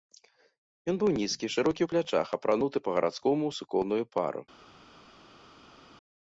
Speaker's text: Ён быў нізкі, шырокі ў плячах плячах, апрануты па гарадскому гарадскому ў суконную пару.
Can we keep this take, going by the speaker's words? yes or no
no